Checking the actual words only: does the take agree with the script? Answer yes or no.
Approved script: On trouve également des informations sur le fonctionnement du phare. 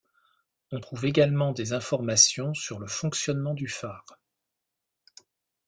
yes